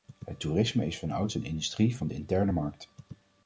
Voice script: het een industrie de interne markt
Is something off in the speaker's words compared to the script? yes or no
yes